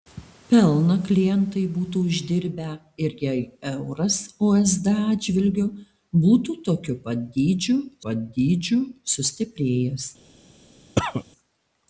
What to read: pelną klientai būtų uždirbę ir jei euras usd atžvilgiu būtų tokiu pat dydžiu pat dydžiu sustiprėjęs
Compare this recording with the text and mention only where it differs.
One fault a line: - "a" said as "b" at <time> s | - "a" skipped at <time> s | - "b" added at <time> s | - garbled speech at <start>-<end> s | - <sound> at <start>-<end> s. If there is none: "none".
- cough at 11.0-11.2 s